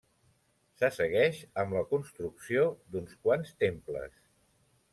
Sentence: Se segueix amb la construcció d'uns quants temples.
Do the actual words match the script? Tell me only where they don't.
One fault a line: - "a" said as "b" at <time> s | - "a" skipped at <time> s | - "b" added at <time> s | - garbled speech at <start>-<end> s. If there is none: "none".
none